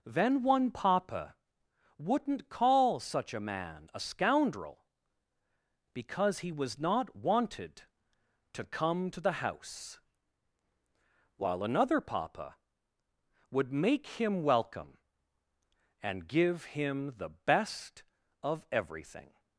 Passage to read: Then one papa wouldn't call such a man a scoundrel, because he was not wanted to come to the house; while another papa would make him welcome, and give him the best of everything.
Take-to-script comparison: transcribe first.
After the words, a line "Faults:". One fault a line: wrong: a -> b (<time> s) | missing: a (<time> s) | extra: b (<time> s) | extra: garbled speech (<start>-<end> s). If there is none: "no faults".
Then one papa wouldn't call such a man a scoundrel, because he was not wanted to come to the house; while another papa would make him welcome, and give him the best of everything.
Faults:
no faults